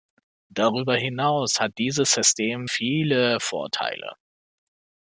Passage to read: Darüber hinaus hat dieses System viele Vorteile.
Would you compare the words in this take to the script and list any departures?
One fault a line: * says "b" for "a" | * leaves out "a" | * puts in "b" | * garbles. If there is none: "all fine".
all fine